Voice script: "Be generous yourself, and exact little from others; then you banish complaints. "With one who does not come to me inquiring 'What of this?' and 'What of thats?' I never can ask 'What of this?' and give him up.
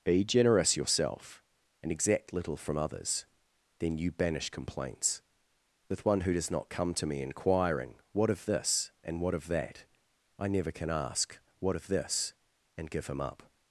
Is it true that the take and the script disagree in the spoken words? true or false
true